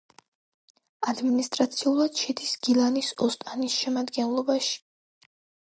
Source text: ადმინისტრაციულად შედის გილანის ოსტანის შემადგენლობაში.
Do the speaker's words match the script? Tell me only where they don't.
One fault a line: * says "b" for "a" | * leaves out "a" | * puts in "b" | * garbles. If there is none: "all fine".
all fine